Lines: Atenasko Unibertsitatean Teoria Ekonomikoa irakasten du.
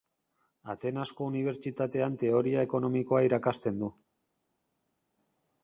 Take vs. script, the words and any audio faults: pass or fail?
pass